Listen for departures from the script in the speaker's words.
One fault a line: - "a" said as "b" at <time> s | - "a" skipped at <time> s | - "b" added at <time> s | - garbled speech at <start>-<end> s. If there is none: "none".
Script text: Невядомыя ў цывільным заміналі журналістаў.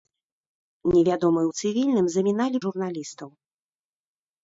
none